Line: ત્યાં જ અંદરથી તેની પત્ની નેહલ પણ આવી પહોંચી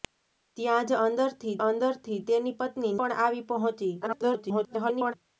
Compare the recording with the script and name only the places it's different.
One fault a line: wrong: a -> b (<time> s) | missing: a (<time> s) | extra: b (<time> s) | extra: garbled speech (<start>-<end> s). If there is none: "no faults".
extra: અંદરથી (1.6 s)
missing: નેહલ (2.9 s)
extra: garbled speech (4.0-5.1 s)